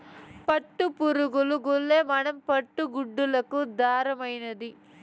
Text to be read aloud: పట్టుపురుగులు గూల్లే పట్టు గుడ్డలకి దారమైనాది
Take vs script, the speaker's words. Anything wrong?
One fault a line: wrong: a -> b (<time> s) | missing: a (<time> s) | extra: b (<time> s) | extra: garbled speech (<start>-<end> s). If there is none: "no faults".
extra: మన (2.1 s)